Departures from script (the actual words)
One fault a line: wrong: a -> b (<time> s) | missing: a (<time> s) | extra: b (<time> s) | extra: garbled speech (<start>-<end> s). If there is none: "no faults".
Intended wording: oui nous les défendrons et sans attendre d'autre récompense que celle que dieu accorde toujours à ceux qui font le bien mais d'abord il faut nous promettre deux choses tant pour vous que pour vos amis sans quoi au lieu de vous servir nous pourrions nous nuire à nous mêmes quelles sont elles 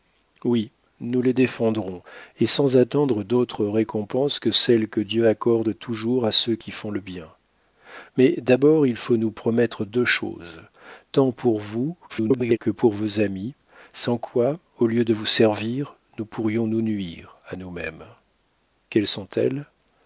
extra: garbled speech (12.1-12.6 s)